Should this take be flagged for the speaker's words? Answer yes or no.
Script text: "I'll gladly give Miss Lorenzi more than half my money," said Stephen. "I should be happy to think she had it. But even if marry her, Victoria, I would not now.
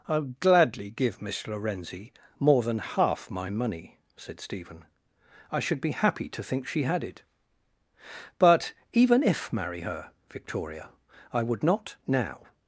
no